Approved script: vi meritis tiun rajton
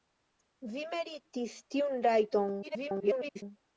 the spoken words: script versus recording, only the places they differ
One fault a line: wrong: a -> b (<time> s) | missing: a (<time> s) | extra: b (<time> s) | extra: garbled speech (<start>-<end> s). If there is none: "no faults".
extra: garbled speech (2.6-3.4 s)